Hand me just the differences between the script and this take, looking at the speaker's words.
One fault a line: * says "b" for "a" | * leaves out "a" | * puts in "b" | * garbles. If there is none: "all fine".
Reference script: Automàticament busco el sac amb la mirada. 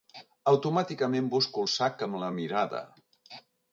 all fine